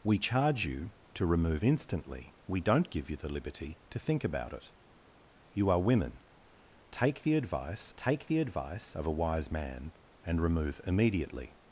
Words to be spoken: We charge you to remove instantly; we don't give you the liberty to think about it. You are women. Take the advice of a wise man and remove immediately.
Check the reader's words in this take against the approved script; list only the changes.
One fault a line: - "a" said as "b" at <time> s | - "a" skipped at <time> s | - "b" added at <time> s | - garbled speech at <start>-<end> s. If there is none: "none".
- "take the advice" added at 7.9 s